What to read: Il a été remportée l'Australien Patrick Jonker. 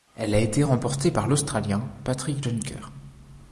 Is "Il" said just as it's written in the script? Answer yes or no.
no